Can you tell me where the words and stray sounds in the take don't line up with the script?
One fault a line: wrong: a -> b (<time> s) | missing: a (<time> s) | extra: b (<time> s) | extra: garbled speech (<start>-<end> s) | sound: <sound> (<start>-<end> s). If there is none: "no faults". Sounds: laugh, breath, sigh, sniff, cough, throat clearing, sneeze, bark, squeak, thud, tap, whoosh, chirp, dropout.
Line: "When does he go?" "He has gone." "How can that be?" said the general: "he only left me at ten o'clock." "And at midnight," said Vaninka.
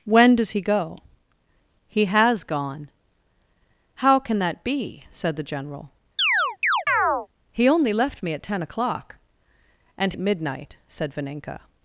sound: chirp (6.2-7.3 s)